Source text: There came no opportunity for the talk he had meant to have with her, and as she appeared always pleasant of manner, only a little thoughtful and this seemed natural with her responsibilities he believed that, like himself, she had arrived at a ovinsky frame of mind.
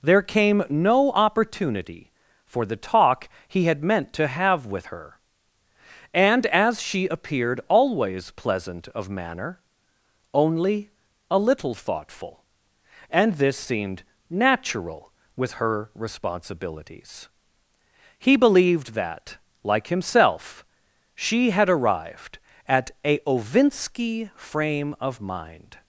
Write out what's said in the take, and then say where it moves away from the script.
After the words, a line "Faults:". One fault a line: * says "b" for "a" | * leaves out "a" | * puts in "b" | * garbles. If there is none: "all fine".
There came no opportunity for the talk he had meant to have with her, and as she appeared always pleasant of manner, only a little thoughtful and this seemed natural with her responsibilities he believed that, like himself, she had arrived at a ovinsky frame of mind.
Faults:
all fine